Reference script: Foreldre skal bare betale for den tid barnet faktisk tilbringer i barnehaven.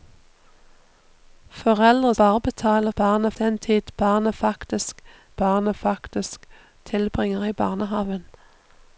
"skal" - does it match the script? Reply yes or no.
no